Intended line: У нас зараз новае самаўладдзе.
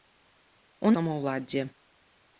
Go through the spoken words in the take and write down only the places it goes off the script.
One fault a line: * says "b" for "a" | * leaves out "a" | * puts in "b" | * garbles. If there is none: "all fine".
* leaves out "нас зараз новае"